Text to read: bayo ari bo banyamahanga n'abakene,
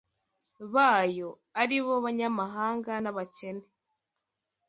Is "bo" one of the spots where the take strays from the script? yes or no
no